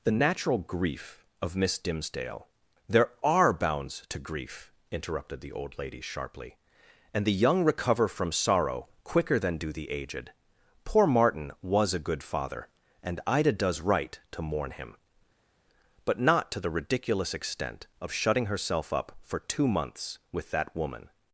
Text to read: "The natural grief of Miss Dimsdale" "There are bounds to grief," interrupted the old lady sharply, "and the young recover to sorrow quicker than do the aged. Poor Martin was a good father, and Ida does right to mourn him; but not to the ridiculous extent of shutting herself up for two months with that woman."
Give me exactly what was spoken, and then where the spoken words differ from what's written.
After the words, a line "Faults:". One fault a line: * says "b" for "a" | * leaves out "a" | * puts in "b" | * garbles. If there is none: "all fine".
"The natural grief of Miss Dimsdale" "There are bounds to grief," interrupted the old lady sharply, "and the young recover from sorrow quicker than do the aged. Poor Martin was a good father, and Ida does right to mourn him; but not to the ridiculous extent of shutting herself up for two months with that woman."
Faults:
* says "from" for "to"